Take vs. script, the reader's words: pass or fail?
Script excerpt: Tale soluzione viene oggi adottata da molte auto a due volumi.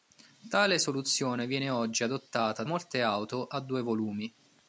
fail